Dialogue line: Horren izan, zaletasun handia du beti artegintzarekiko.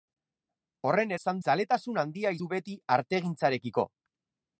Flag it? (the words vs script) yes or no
no